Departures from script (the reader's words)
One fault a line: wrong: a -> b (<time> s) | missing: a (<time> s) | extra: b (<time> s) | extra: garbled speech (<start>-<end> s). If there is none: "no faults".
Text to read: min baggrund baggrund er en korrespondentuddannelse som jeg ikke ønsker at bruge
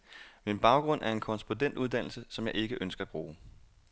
missing: baggrund (1.0 s)